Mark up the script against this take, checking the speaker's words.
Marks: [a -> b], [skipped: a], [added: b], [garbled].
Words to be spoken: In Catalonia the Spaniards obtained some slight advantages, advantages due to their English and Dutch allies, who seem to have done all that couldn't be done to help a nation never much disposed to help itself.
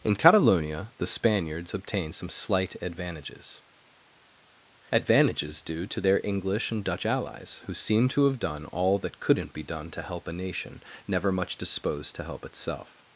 In Catalonia the Spaniards obtained some slight advantages, advantages due to their English and Dutch allies, who seem to have done all that couldn't be done to help a nation never much disposed to help itself.